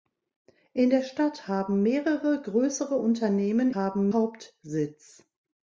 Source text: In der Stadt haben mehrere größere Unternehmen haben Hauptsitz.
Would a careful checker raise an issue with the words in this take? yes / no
no